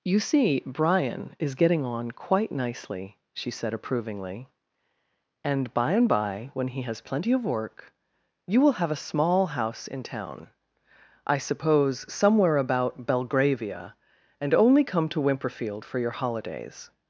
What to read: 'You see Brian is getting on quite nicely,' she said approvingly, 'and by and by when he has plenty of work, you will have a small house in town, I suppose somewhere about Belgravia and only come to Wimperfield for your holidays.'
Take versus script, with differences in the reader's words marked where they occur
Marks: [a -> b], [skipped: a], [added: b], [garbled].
'You see Brian is getting on quite nicely,' she said approvingly, 'and by and by when he has plenty of work, you will have a small house in town, I suppose somewhere about Belgravia and only come to Wimperfield for your holidays.'